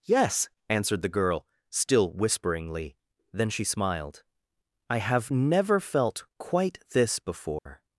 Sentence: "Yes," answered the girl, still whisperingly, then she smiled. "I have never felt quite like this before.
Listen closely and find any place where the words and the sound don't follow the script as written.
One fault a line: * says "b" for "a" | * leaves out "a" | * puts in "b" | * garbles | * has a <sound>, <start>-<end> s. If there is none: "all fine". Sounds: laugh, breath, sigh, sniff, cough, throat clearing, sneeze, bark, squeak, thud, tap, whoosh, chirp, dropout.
* leaves out "like"
* has a dropout, 7.6-7.7 s